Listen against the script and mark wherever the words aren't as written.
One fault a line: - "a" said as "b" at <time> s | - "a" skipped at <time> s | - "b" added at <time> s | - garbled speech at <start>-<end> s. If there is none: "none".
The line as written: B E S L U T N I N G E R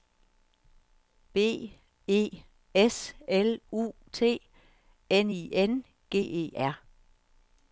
none